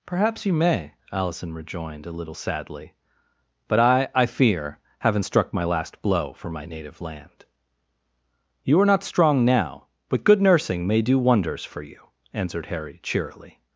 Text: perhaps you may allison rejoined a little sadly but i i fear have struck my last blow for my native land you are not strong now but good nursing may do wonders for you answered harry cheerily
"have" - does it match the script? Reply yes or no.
no